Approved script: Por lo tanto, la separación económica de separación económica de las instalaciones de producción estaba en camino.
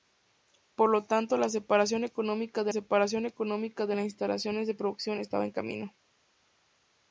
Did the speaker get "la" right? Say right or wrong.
right